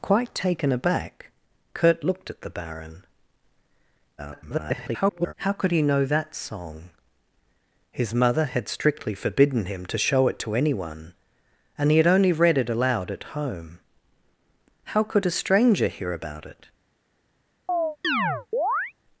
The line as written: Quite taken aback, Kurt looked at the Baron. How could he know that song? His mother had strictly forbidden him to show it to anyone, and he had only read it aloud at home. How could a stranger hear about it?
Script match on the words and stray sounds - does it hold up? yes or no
no